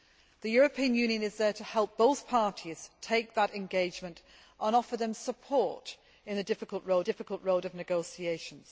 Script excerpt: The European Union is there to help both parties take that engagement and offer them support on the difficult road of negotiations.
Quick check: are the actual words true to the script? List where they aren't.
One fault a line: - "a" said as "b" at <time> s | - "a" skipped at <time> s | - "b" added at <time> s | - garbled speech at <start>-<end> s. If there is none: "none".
- "difficult road" added at 7.0 s